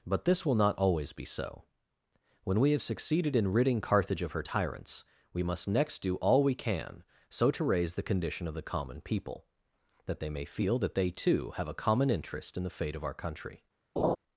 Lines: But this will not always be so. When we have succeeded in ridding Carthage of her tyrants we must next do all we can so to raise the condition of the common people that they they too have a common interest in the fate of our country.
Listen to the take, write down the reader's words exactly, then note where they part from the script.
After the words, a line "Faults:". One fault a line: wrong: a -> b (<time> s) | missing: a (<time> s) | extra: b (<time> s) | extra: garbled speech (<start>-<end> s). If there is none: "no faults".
But this will not always be so. When we have succeeded in ridding Carthage of her tyrants we must next do all we can so to raise the condition of the common people that they may feel that they too have a common interest in the fate of our country.
Faults:
extra: may feel that (10.3 s)